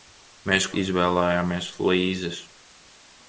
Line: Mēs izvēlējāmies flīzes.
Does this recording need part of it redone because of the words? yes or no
no